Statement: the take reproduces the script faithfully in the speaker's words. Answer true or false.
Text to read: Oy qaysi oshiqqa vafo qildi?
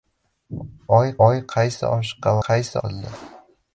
false